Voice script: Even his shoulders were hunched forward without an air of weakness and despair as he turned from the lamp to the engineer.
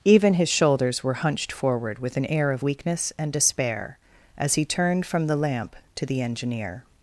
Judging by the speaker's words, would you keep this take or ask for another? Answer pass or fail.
fail